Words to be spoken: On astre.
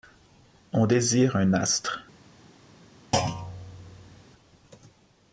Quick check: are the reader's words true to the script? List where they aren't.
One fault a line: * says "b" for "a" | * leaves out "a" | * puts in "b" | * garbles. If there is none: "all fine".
* puts in "désire un"